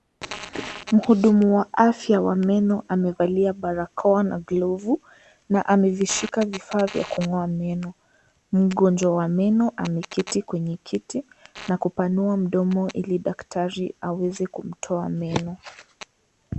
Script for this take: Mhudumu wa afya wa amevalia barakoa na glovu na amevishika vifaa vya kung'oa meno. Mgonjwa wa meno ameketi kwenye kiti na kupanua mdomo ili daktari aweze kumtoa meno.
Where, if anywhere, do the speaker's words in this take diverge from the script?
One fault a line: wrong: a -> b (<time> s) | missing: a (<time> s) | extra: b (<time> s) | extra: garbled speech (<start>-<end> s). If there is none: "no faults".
extra: meno (2.4 s)